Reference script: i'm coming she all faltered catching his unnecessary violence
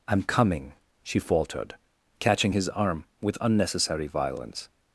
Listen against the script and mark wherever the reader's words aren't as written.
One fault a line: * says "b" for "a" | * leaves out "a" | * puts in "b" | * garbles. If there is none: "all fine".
* leaves out "all"
* puts in "arm with"